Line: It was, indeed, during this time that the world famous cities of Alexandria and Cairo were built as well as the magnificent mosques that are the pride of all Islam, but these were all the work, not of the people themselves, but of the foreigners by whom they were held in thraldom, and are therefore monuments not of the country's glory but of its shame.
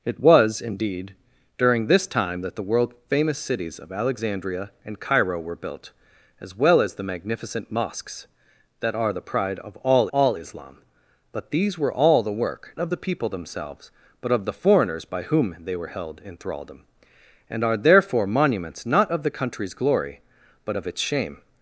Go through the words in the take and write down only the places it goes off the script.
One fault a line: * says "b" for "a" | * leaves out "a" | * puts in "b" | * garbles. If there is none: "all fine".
* puts in "all"
* leaves out "not"